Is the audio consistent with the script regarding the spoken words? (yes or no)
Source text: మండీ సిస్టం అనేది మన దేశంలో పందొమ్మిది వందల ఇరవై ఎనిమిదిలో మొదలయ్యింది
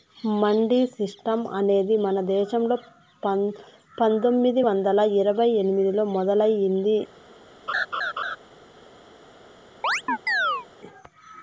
yes